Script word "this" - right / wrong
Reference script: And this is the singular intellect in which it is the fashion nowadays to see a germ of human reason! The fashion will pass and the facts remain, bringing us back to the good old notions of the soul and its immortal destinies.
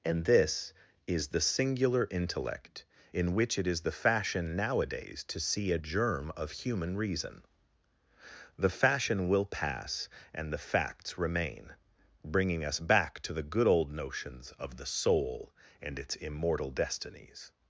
right